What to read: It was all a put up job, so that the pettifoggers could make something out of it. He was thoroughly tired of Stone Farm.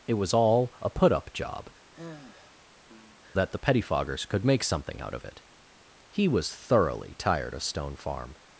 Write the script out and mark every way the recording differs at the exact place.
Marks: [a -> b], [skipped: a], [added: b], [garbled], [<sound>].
It was all a put up job, [skipped: so] [sigh] that the pettifoggers could make something out of it. He was thoroughly tired of Stone Farm.